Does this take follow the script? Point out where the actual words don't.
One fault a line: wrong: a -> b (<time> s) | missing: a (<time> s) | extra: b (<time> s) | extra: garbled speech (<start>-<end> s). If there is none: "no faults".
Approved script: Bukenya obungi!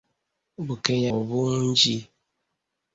no faults